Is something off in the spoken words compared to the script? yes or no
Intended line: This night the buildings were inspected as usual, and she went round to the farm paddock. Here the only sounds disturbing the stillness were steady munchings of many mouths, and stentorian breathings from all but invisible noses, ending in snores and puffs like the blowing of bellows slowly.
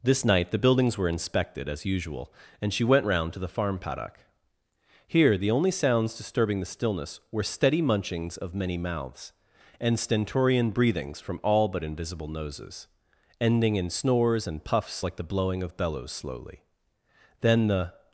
yes